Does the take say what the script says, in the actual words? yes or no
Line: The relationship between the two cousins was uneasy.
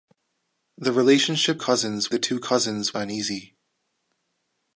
no